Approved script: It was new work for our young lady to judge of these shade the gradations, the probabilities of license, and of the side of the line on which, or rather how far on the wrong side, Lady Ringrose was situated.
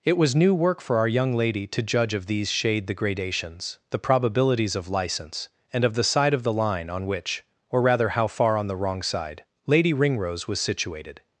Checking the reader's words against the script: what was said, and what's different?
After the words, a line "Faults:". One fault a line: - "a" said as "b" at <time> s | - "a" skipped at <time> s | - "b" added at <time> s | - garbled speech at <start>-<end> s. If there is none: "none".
It was new work for our young lady to judge of these shade the gradations, the probabilities of license, and of the side of the line on which, or rather how far on the wrong side, Lady Ringrose was situated.
Faults:
none